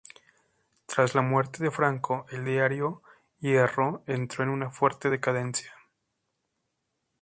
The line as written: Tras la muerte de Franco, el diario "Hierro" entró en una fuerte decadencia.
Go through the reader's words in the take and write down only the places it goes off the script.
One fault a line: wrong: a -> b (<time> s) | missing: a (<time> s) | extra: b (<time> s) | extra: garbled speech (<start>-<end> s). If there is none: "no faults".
no faults